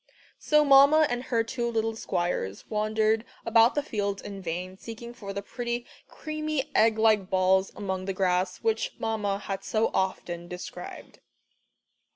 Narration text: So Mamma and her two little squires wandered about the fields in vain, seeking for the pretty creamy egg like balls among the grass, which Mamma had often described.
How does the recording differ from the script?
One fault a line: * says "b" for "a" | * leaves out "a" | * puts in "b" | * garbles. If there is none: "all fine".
* puts in "so"